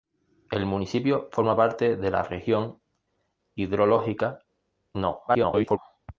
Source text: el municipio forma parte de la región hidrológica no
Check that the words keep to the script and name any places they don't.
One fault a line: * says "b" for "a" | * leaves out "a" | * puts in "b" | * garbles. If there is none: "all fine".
* garbles